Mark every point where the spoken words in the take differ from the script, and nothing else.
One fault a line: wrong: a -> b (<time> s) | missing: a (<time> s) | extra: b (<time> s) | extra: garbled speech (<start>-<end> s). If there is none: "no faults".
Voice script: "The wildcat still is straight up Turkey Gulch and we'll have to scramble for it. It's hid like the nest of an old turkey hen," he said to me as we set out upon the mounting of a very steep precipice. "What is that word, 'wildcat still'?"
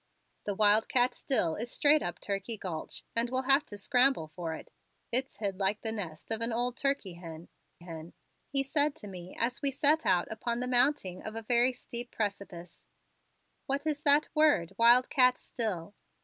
extra: hen (7.8 s)